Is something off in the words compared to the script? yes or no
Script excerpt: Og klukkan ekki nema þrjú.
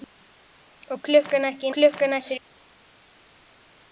yes